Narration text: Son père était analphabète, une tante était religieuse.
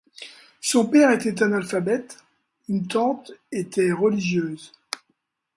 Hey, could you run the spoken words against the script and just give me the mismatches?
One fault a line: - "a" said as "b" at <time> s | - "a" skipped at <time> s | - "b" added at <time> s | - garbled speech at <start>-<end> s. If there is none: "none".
none